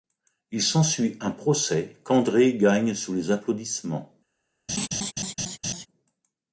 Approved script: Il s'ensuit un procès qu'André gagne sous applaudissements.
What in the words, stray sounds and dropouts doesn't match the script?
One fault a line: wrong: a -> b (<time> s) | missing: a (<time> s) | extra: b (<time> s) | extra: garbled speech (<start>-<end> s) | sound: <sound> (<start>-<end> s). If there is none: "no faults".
extra: les (3.1 s)
sound: laugh (4.7-5.9 s)